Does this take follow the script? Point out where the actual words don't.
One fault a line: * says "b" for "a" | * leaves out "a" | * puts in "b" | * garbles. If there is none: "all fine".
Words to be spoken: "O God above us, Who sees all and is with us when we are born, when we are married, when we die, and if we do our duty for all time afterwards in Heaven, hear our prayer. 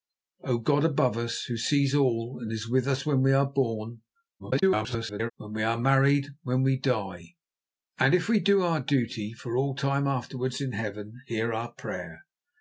* garbles